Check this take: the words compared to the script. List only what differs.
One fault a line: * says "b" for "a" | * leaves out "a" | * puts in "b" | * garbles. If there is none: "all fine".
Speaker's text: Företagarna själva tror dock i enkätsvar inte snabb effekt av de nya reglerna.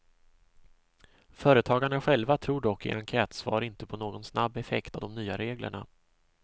* puts in "på någon"